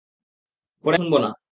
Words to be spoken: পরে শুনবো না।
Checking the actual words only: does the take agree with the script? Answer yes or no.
yes